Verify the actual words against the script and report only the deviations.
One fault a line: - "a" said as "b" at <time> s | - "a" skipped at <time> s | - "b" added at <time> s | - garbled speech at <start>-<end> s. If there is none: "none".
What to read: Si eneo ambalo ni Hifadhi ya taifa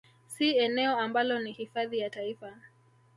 none